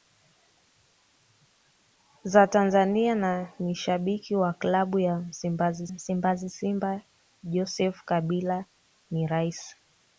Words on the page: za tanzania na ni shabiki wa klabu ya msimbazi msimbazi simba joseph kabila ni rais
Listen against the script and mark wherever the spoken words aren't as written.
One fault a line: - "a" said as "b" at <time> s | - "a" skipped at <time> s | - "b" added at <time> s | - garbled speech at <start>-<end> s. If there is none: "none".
none